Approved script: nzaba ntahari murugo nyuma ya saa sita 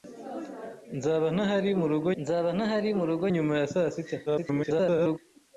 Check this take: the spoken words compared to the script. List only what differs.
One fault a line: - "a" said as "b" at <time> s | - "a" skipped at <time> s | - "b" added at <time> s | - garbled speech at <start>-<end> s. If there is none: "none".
- "nzaba ntahari murugo" added at 2.2 s
- garbled speech at 4.3-5.2 s